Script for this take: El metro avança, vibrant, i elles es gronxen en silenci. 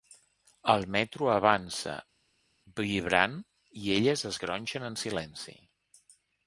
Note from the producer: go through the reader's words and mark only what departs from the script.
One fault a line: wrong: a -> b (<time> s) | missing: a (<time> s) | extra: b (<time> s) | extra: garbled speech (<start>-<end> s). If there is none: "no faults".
no faults